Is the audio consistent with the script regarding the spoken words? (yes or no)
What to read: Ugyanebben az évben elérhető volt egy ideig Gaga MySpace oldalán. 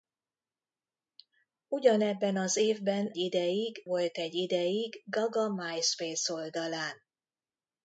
no